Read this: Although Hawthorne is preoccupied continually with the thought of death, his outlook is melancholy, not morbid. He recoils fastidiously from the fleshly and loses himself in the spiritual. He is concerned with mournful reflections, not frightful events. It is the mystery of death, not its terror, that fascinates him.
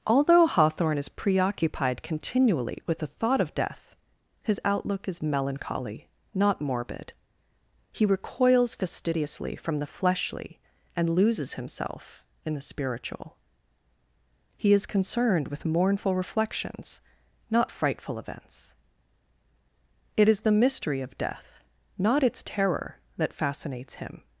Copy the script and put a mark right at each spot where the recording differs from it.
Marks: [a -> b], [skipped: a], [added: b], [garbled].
Although Hawthorne is preoccupied continually with the thought of death, his outlook is melancholy, not morbid. He recoils fastidiously from the fleshly and loses himself in the spiritual. He is concerned with mournful reflections, not frightful events. It is the mystery of death, not its terror, that fascinates him.